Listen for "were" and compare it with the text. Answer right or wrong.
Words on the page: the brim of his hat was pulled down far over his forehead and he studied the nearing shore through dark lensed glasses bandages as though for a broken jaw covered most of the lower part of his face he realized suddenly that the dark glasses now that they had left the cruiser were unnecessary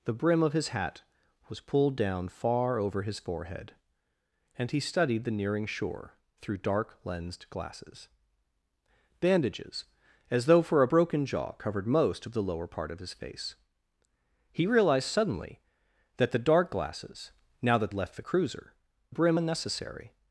wrong